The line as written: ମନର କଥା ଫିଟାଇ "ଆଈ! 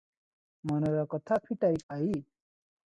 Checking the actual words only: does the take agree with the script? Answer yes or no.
yes